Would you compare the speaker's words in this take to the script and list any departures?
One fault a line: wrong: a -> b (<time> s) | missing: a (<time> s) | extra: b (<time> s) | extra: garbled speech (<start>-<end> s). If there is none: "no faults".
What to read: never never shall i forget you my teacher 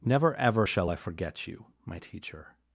wrong: never -> ever (0.3 s)